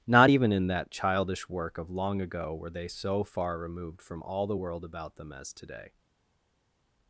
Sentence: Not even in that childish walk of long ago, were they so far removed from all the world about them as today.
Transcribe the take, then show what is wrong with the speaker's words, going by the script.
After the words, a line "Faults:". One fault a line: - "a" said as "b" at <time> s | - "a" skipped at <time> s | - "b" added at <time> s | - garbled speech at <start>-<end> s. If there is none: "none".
Not even in that childish work of long ago, were they so far removed from all the world about them as today.
Faults:
- "walk" said as "work" at 1.5 s